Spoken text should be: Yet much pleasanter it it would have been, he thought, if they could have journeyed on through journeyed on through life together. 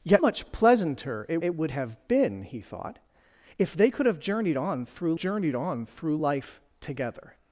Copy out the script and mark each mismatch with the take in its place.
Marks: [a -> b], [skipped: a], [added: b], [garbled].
Yet much pleasanter it it would have been, he thought, if they could have journeyed on through journeyed on through life together.